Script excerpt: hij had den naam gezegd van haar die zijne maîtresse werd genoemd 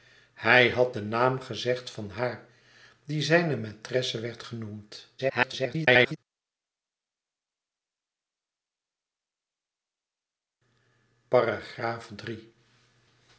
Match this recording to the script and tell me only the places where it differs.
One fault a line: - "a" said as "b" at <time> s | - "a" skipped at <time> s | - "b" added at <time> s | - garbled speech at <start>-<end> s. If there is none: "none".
- garbled speech at 5.2-6.2 s